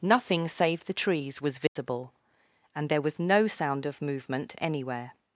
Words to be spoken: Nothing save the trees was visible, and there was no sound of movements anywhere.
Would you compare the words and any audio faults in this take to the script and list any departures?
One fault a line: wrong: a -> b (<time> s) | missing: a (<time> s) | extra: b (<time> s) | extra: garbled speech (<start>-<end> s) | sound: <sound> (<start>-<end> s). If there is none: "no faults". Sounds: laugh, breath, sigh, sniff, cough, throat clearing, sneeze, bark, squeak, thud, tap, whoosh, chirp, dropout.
sound: dropout (1.7-1.8 s)
wrong: movements -> movement (4.0 s)